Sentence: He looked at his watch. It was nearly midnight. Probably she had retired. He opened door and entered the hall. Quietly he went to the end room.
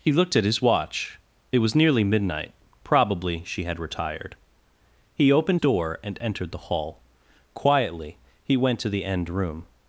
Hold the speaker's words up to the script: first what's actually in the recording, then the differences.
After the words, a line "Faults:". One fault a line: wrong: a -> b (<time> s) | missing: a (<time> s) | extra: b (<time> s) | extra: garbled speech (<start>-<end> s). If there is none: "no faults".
He looked at his watch. It was nearly midnight. Probably she had retired. He opened door and entered the hall. Quietly he went to the end room.
Faults:
no faults